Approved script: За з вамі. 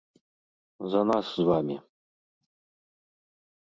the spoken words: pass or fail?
fail